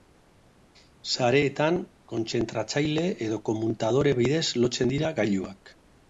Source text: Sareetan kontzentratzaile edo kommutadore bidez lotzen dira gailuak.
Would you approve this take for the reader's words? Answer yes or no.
yes